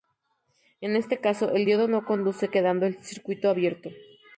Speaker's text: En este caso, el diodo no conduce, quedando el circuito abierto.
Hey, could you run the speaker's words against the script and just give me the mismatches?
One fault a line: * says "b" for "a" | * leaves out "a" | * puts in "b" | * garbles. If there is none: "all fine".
all fine